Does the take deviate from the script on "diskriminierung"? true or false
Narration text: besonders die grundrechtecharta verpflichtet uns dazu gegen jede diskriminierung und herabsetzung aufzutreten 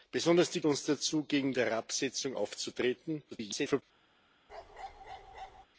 true